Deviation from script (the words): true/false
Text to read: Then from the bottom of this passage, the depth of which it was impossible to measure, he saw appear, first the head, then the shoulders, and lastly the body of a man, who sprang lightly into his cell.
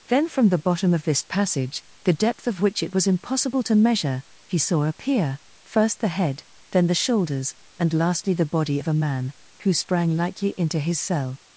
false